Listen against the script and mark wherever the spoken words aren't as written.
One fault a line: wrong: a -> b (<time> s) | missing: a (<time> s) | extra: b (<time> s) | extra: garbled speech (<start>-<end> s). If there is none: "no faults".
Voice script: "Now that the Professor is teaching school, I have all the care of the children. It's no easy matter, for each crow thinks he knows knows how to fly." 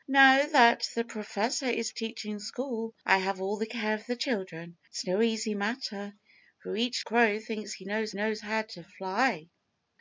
no faults